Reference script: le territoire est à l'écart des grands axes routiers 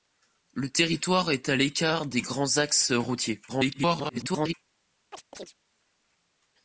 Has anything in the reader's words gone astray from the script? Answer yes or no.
yes